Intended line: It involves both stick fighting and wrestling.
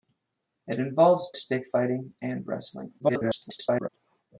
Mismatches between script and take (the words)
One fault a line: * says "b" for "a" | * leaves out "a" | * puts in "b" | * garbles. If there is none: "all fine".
* leaves out "both"
* garbles